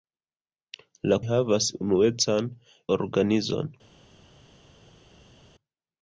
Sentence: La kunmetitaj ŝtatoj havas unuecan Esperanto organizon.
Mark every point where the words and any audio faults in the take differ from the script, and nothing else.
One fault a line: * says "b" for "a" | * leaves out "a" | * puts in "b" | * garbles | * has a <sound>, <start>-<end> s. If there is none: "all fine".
* leaves out "kunmetitaj ŝtatoj"
* leaves out "Esperanto"